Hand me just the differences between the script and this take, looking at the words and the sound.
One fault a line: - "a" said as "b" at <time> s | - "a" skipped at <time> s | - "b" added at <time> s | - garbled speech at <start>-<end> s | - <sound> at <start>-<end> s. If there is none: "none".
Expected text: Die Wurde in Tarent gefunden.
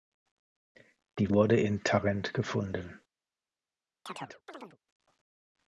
- chirp at 4.1-4.8 s